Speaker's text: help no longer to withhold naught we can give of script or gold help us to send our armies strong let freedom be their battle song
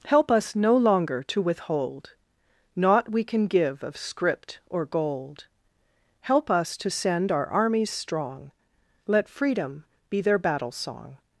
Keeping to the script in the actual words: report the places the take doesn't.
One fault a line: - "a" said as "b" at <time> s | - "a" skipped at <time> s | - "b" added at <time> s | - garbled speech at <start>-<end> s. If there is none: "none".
- "us" added at 0.3 s